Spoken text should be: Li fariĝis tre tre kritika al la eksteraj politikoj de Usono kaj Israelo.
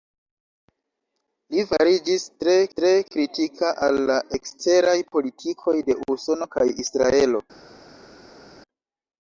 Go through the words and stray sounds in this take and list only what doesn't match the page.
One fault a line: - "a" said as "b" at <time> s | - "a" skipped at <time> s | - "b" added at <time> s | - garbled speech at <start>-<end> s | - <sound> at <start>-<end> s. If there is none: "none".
none